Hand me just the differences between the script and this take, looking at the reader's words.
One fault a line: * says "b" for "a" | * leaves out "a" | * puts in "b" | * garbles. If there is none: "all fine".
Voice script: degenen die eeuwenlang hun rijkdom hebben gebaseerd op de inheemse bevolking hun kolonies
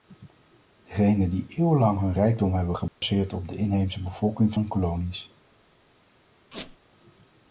all fine